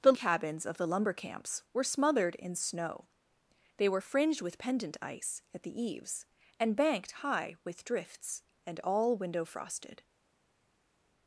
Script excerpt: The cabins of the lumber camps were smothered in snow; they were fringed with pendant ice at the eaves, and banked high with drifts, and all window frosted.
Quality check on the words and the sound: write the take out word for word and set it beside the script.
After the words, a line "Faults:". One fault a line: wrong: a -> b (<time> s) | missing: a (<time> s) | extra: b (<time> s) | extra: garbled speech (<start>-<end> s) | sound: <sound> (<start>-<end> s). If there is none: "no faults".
The cabins of the lumber camps were smothered in snow; they were fringed with pendant ice at the eaves, and banked high with drifts, and all window frosted.
Faults:
no faults